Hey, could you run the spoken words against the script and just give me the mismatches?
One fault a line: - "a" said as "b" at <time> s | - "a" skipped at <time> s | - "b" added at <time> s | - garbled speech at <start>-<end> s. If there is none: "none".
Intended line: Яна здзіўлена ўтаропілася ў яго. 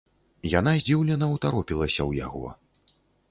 none